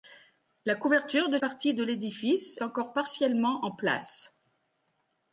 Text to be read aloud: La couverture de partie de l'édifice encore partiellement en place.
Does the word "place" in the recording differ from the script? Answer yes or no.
no